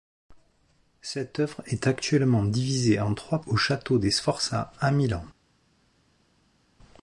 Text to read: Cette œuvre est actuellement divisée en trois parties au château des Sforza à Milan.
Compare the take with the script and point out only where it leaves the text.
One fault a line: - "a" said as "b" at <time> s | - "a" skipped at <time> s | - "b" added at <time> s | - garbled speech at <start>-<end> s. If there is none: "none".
- "parties" skipped at 3.4 s